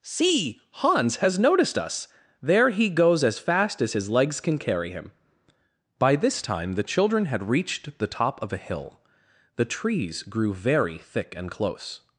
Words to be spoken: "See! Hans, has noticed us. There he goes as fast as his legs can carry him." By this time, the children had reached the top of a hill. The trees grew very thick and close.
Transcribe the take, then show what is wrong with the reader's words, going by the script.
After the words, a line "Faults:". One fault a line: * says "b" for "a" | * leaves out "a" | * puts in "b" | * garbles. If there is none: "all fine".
"See! Hans, has noticed us. There he goes as fast as his legs can carry him." By this time, the children had reached the top of a hill. The trees grew very thick and close.
Faults:
all fine